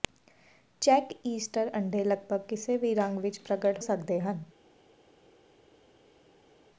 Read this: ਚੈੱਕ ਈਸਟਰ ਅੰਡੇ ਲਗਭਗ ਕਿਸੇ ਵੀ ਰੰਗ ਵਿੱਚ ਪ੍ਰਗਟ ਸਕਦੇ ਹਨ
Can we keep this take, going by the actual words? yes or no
yes